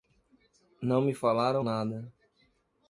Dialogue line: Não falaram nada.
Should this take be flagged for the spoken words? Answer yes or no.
yes